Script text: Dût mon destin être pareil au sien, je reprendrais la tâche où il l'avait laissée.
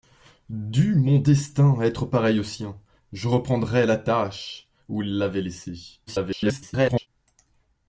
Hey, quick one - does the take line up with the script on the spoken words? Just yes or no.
no